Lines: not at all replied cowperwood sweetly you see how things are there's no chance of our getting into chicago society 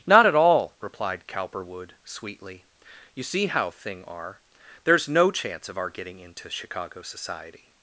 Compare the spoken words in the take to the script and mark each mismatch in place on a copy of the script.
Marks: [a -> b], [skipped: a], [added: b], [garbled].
not at all replied cowperwood sweetly you see how [things -> thing] are there's no chance of our getting into chicago society